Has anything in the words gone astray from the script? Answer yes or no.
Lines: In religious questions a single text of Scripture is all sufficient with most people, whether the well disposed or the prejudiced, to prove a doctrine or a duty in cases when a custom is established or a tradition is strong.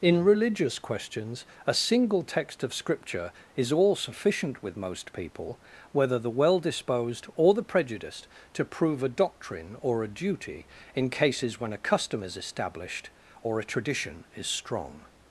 no